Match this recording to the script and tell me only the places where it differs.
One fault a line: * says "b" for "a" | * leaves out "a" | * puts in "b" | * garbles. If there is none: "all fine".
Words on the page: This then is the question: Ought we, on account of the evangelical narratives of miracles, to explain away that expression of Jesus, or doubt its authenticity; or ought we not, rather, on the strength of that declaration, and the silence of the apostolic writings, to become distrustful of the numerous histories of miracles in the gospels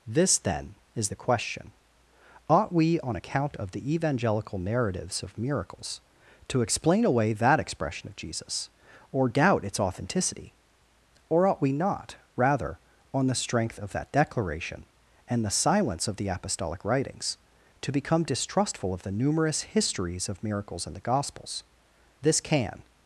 * puts in "This can"